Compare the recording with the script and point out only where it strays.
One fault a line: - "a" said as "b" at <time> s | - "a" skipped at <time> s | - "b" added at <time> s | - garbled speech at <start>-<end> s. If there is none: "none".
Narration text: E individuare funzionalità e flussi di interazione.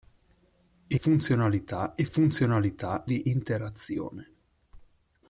- "individuare" skipped at 1.0 s
- "flussi" said as "funzionalità" at 2.0 s